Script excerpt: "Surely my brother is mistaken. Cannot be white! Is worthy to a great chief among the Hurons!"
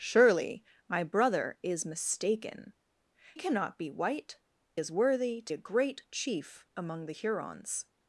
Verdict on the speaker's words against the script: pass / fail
pass